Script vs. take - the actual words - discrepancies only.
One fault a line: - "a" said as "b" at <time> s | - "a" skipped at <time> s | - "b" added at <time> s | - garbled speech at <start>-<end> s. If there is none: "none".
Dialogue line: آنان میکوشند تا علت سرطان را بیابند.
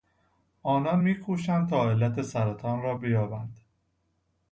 none